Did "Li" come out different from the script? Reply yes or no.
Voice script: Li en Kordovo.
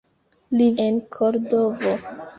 no